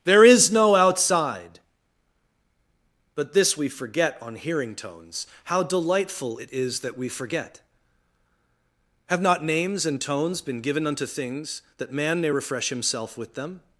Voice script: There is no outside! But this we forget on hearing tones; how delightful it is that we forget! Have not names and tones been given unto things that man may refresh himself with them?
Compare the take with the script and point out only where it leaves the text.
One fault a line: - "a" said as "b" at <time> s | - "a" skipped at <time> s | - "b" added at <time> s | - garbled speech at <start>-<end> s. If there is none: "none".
none